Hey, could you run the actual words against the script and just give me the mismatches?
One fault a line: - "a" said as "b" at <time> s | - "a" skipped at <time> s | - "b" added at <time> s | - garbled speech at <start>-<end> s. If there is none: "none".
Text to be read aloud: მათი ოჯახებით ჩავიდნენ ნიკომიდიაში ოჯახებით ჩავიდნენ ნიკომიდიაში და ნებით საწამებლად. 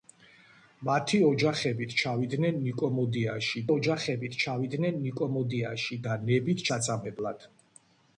none